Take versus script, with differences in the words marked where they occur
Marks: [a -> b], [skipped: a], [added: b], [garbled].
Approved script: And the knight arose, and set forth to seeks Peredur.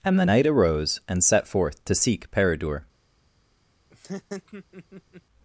And the knight arose, and set forth to [seeks -> seek] Peredur.